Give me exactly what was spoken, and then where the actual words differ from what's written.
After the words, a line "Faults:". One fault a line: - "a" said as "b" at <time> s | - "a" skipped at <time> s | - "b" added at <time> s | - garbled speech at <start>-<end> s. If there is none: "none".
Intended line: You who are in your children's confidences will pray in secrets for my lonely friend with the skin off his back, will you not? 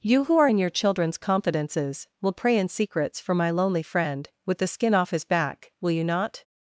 You who are in your children's confidences will pray in secrets for my lonely friend with the skin off his back, will you not?
Faults:
none